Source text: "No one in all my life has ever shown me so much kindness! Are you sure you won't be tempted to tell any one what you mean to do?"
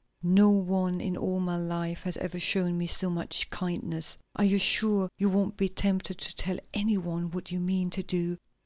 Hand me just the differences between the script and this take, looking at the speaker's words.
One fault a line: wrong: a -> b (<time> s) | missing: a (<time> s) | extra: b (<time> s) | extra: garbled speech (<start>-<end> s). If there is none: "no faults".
no faults